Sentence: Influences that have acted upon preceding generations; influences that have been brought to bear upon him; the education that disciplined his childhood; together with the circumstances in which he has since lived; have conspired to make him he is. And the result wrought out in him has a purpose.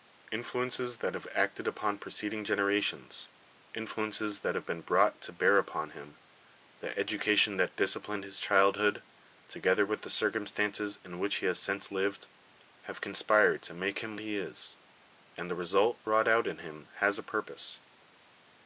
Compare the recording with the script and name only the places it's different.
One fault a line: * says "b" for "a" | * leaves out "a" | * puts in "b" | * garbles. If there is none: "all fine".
all fine